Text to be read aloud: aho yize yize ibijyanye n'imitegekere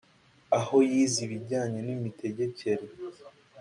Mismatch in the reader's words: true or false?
true